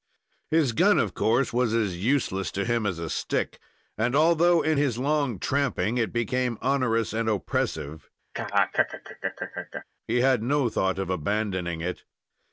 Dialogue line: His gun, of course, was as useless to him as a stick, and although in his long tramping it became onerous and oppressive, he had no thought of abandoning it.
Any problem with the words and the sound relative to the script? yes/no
yes